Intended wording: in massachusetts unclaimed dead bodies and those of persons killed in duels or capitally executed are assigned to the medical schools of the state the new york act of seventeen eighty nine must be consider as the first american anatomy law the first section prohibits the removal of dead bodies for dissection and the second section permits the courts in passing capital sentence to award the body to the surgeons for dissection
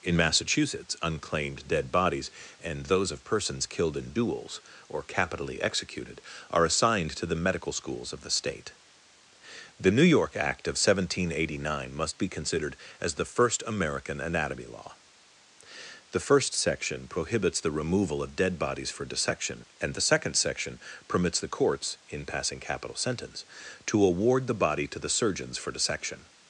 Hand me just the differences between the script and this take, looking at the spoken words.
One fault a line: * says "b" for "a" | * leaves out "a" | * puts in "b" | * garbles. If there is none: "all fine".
* says "considered" for "consider"